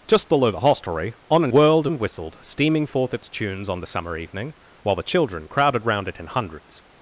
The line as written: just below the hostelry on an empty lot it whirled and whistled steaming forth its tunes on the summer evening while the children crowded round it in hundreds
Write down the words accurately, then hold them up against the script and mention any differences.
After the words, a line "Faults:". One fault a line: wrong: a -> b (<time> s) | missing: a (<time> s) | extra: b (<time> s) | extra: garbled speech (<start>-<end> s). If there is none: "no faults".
just below the hostelry on an whirled and whistled steaming forth its tunes on the summer evening while the children crowded round it in hundreds
Faults:
missing: empty lot it (1.5 s)